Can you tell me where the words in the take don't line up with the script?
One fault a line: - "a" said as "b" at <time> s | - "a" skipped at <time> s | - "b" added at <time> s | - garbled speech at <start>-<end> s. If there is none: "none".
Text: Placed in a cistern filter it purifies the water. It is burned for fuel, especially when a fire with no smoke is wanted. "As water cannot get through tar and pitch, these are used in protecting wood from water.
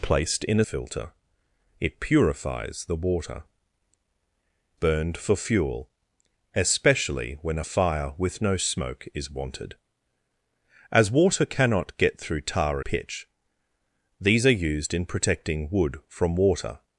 - "cistern" skipped at 0.7 s
- "It is" skipped at 3.4 s
- "and" skipped at 12.8 s